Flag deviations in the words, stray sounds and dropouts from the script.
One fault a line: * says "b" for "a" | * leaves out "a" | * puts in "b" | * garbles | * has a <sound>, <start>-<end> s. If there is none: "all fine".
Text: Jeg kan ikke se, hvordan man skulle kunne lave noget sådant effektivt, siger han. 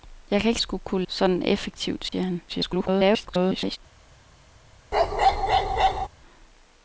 * leaves out "se hvordan man"
* leaves out "lave noget"
* has a dropout, 2.1-2.1 s
* garbles
* has a bark, 4.9-6.1 s